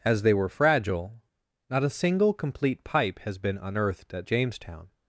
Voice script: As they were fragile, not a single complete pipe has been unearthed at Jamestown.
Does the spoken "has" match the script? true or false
true